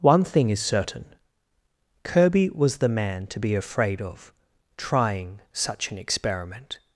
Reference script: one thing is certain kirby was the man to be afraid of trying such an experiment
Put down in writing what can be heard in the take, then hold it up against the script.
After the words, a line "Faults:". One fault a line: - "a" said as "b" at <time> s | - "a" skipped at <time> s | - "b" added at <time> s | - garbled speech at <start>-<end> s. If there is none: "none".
one thing is certain kirby was the man to be afraid of trying such an experiment
Faults:
none